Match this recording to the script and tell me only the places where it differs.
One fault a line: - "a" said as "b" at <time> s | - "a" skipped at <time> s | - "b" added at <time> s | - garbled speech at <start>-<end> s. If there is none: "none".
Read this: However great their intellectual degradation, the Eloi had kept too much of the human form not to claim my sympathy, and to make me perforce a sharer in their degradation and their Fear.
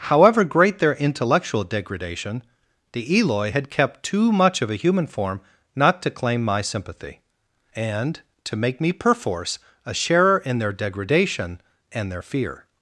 - "the" said as "a" at 4.7 s